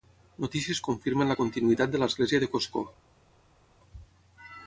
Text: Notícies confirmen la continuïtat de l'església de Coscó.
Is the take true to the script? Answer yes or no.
yes